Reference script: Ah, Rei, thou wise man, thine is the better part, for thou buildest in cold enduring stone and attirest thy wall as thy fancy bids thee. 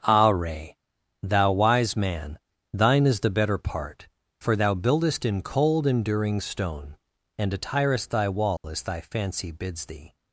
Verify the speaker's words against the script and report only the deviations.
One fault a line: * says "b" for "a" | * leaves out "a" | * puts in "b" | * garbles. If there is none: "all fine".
all fine